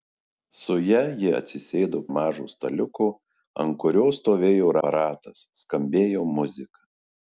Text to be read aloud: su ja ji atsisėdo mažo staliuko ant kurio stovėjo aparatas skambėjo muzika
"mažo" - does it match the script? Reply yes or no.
yes